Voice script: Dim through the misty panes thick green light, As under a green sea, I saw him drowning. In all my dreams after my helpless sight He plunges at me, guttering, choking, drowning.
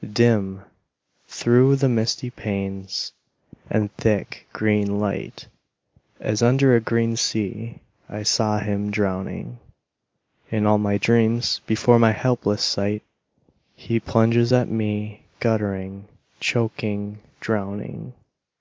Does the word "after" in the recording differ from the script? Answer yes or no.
yes